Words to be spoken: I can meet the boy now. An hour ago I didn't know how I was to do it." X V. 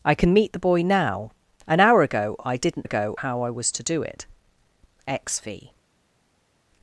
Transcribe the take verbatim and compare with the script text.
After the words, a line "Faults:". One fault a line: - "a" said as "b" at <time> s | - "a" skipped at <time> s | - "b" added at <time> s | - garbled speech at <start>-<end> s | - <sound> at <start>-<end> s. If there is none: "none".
I can meet the boy now. An hour ago I didn't ago how I was to do it." X V.
Faults:
- "know" said as "ago" at 2.8 s